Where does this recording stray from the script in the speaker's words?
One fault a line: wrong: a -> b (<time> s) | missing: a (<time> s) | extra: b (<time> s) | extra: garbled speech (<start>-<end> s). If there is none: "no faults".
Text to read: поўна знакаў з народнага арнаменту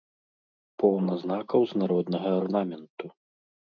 no faults